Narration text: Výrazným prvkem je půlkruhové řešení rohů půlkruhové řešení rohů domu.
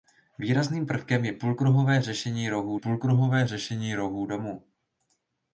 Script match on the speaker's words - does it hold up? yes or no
yes